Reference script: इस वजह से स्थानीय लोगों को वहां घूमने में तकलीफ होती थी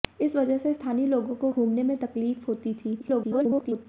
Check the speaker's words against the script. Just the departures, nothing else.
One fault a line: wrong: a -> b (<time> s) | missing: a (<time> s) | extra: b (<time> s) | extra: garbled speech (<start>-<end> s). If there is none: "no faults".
missing: वहां (1.5 s)
extra: garbled speech (3.0-3.9 s)